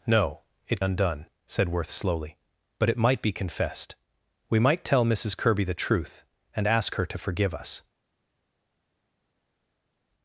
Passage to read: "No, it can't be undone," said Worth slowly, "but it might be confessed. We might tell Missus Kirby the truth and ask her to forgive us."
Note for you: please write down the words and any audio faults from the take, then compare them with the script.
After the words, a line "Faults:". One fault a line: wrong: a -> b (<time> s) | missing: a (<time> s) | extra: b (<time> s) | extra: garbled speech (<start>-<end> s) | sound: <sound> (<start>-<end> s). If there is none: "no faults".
"No, it undone," said Worth slowly, "but it might be confessed. We might tell Missus Kirby the truth and ask her to forgive us."
Faults:
missing: can't be (0.8 s)